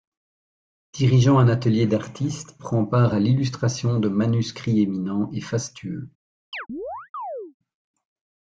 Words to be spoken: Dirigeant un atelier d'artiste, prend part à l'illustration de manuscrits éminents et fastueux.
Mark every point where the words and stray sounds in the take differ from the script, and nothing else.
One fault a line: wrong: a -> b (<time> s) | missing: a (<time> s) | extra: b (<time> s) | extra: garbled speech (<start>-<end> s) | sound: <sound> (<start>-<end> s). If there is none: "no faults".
sound: chirp (6.5-7.5 s)